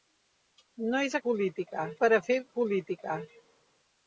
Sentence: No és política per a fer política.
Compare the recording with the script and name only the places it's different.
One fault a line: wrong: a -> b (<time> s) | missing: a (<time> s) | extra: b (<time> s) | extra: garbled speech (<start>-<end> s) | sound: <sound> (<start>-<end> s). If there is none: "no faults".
no faults